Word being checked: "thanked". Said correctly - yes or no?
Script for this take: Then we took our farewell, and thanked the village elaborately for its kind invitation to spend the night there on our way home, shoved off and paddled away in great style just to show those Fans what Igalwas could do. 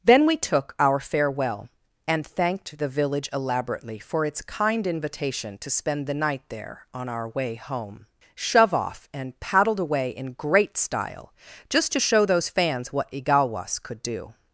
yes